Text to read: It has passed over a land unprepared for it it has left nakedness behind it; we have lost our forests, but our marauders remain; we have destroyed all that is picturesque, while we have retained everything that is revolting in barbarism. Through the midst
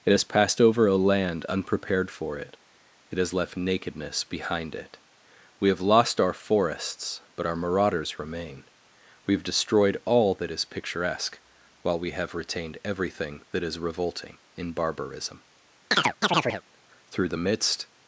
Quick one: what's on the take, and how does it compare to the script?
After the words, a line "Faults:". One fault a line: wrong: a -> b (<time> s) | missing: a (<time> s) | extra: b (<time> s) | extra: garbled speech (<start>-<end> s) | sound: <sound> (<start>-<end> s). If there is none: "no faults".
It has passed over a land unprepared for it it has left nakedness behind it; we have lost our forests, but our marauders remain; we have destroyed all that is picturesque, while we have retained everything that is revolting in barbarism. Through the midst
Faults:
sound: chirp (15.9-16.6 s)